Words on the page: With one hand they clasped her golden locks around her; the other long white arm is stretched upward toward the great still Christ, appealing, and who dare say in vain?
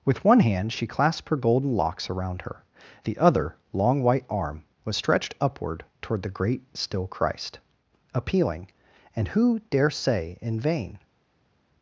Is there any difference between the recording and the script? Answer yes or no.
yes